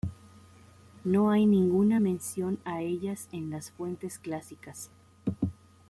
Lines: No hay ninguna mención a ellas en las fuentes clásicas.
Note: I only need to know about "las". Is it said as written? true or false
true